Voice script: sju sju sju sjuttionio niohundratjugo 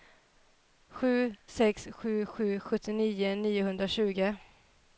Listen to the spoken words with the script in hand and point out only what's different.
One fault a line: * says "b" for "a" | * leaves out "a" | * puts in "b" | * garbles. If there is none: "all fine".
* puts in "sex"